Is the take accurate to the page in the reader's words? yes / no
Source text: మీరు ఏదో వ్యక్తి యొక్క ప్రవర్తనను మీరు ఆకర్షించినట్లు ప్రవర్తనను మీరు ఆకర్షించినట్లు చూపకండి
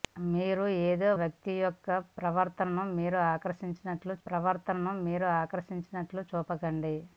yes